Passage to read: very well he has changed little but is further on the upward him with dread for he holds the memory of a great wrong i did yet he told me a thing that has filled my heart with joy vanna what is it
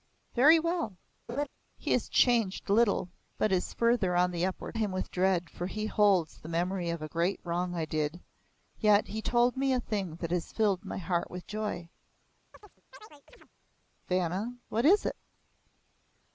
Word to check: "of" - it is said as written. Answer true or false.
true